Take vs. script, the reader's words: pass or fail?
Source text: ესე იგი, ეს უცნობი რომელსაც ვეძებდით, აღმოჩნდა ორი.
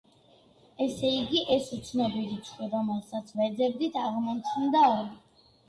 fail